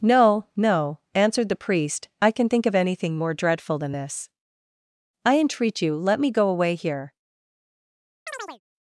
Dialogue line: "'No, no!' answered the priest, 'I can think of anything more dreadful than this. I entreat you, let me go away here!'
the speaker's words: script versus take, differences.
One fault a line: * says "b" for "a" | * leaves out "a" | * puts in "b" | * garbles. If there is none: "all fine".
all fine